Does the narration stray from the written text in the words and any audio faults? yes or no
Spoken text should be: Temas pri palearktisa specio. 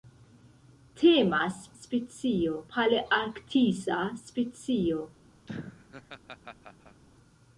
yes